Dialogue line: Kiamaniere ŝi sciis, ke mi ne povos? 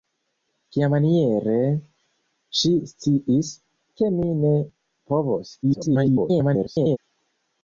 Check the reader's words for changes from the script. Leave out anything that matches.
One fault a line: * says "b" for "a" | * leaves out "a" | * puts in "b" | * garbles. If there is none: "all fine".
* garbles